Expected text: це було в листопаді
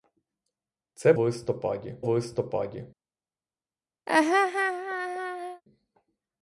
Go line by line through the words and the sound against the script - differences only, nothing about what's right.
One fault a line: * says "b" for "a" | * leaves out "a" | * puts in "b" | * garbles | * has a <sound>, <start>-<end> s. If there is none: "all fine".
* says "листопаді" for "було"
* has a laugh, 4.1-5.6 s